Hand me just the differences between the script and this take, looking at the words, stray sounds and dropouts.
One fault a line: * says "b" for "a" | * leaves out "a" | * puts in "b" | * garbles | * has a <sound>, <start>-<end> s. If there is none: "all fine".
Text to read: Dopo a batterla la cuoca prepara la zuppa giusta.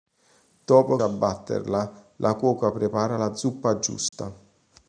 * has a dropout, 4.1-4.1 s